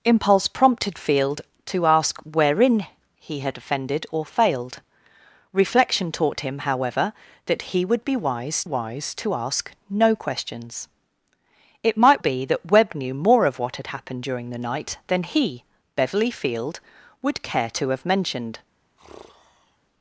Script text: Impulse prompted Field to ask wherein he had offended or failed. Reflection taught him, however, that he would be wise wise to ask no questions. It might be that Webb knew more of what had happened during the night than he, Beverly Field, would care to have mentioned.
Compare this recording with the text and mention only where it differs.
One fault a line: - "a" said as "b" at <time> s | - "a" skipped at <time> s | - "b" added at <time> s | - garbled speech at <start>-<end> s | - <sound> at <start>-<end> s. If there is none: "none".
- sigh at 19.0-19.8 s